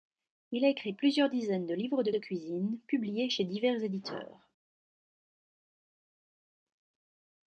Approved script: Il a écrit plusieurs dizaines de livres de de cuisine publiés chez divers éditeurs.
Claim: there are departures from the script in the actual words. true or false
false